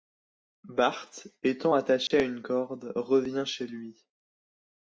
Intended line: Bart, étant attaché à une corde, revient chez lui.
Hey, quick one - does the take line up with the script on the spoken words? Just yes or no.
yes